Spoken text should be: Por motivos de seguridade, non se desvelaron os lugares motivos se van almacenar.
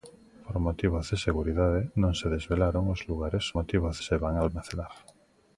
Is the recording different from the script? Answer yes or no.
no